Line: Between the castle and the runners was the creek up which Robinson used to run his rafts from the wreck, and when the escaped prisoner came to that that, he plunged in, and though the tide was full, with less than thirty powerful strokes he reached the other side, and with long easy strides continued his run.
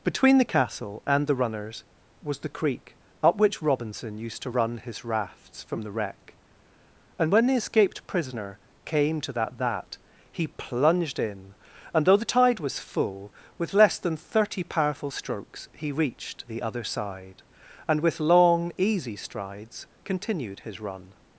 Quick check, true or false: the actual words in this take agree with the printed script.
true